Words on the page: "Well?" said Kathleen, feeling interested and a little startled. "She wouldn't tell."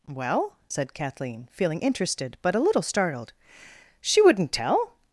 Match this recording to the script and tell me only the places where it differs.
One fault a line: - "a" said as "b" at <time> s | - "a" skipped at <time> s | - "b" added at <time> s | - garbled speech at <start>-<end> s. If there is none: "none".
- "and" said as "but" at 2.4 s